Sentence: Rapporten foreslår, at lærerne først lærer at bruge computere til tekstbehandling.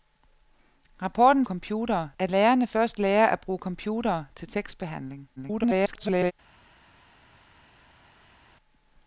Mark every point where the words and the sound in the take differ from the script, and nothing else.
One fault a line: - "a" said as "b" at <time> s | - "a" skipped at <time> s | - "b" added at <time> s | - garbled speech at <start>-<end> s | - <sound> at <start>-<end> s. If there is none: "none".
- "foreslår" said as "computere" at 1.4 s
- garbled speech at 5.4-6.3 s